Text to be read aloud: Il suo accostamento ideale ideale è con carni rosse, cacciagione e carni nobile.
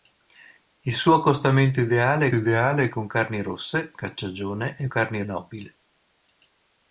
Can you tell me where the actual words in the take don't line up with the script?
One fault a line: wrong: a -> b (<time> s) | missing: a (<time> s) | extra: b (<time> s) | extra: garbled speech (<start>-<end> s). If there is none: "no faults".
no faults